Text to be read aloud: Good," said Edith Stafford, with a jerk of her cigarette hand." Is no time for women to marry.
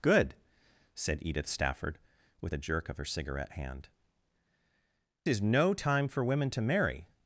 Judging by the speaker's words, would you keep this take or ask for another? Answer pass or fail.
pass